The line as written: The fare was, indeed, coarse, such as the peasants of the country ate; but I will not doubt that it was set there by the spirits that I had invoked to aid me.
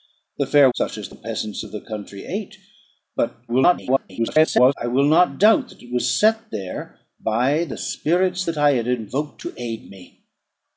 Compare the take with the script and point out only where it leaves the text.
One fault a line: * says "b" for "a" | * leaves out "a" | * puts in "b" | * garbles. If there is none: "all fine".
* leaves out "was indeed coarse"
* garbles